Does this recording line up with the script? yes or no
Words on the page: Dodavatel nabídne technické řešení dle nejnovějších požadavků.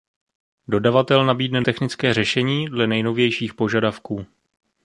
yes